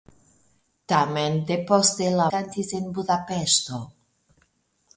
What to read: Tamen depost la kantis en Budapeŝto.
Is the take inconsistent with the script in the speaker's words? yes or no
no